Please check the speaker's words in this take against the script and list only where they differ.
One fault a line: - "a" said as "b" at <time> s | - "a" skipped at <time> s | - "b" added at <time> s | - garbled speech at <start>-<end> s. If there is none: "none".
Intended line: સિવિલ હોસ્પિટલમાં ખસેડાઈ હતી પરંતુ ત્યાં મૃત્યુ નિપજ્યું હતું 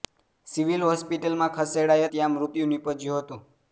- "હતી પરંતુ" skipped at 2.1 s